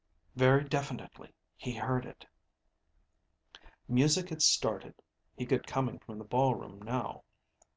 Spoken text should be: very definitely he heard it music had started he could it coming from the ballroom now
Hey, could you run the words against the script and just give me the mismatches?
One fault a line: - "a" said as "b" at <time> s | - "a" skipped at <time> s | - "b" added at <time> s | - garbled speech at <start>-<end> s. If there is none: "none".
none